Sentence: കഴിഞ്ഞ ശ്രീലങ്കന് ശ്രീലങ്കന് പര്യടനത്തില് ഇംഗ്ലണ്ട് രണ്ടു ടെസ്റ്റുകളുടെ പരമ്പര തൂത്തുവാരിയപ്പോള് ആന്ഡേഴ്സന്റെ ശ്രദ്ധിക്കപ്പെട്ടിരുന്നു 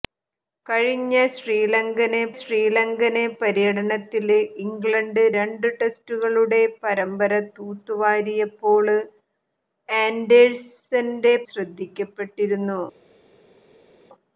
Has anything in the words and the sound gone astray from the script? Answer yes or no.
no